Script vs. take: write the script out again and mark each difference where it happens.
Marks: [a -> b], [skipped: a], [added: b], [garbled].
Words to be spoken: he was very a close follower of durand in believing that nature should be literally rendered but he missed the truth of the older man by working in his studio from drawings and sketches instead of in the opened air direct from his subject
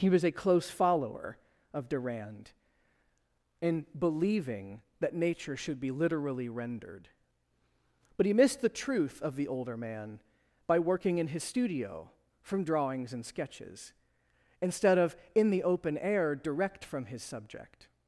he was [skipped: very] a close follower of durand in believing that nature should be literally rendered but he missed the truth of the older man by working in his studio from drawings and sketches instead of in the [opened -> open] air direct from his subject